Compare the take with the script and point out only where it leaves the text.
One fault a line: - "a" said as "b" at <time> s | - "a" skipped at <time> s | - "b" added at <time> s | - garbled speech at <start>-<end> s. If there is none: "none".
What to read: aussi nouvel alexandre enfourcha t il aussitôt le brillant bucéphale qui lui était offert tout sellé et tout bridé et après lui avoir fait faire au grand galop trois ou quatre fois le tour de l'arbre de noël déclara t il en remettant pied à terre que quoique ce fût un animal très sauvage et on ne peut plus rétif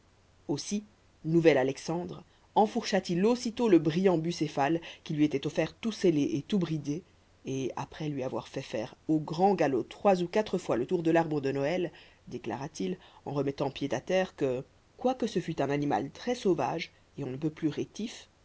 none